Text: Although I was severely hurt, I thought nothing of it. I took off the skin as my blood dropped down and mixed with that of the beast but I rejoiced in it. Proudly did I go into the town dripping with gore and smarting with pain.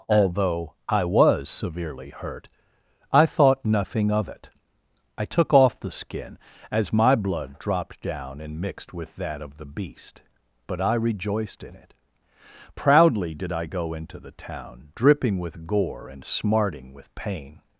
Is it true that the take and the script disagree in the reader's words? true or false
false